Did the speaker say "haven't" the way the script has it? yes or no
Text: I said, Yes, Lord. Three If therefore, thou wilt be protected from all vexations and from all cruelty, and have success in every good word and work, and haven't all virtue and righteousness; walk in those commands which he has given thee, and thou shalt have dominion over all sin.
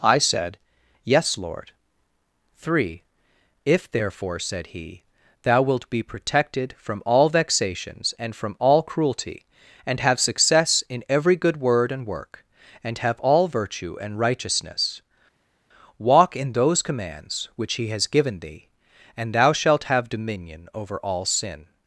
no